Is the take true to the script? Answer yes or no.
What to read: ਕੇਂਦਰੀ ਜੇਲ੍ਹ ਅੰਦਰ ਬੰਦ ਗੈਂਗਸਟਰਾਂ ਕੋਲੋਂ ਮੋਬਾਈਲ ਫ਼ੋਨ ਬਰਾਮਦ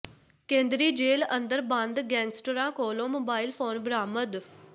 yes